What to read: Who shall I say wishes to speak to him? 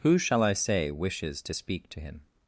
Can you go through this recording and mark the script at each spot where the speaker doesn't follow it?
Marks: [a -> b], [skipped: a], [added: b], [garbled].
Who shall I say wishes to speak to him?